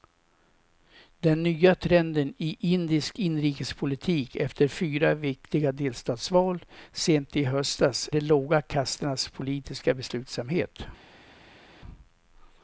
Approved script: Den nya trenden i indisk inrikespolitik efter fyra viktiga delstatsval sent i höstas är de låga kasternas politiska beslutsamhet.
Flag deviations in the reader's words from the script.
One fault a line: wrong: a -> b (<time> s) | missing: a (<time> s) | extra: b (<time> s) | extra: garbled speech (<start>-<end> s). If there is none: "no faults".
missing: är (8.1 s)